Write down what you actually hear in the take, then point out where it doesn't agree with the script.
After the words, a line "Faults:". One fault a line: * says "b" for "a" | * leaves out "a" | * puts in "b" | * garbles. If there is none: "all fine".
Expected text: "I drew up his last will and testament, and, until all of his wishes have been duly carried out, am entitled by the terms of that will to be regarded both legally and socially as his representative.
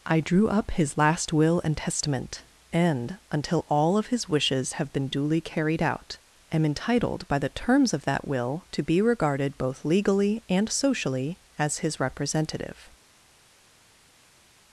"I drew up his last will and testament, and, until all of his wishes have been duly carried out, am entitled by the terms of that will to be regarded both legally and socially as his representative.
Faults:
all fine